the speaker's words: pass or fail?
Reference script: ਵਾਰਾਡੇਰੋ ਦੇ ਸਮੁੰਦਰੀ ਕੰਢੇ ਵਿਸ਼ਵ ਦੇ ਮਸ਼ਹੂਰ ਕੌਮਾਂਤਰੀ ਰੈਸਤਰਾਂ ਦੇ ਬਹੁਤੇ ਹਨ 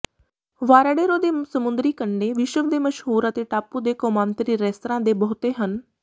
fail